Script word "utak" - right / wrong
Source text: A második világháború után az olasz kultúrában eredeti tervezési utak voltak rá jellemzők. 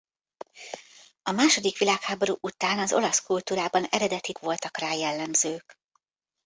wrong